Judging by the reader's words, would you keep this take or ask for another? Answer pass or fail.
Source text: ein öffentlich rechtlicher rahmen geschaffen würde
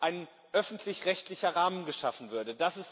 pass